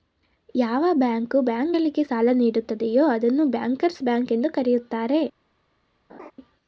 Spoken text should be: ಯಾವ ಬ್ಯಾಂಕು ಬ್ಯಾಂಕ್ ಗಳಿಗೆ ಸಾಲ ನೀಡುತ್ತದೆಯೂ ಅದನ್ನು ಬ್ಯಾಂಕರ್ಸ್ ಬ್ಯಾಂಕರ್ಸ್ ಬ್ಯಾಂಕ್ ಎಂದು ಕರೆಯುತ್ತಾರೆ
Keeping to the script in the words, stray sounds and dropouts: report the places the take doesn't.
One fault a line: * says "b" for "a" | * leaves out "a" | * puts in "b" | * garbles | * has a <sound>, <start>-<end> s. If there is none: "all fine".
* leaves out "ಬ್ಯಾಂಕರ್ಸ್"
* has a laugh, 6.1-6.3 s